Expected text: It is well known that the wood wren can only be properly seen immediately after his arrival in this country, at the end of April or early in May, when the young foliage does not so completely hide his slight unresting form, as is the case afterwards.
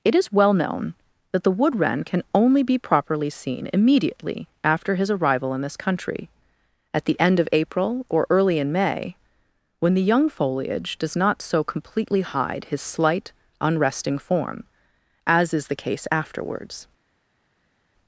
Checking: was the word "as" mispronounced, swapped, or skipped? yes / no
no